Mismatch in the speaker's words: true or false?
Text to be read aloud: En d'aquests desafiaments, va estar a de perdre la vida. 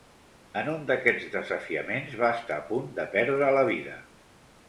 true